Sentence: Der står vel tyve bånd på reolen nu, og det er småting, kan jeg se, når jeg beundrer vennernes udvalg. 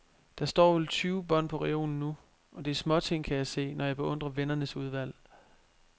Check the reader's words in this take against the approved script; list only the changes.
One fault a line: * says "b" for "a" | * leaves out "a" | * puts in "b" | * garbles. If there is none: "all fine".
all fine